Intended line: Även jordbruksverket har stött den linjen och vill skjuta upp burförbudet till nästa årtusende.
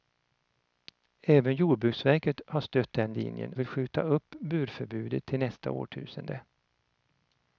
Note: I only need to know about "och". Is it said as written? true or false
false